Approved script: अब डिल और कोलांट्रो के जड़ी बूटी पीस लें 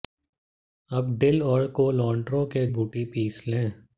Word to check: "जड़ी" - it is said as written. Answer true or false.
false